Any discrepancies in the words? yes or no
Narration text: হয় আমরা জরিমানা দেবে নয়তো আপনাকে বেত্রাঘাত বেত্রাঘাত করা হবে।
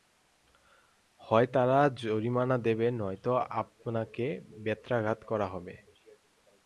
yes